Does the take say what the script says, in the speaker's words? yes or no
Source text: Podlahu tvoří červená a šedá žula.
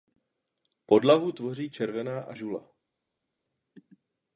no